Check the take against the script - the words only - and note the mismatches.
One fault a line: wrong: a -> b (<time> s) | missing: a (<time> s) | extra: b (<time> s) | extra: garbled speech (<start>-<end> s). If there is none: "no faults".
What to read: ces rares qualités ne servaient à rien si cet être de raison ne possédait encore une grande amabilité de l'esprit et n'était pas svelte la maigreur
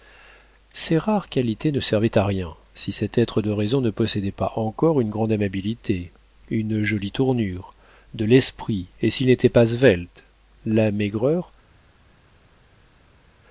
extra: pas (4.3 s)
extra: une jolie tournure (6.5 s)
extra: s'il (9.1 s)